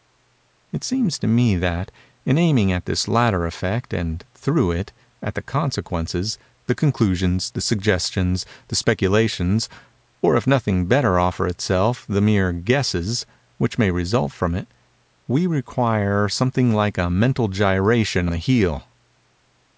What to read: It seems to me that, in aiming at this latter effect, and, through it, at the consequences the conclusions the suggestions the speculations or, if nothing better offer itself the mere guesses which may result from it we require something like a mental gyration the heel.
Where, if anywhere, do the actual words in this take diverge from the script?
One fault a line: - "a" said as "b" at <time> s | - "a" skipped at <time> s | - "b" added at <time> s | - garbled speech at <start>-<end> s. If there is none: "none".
none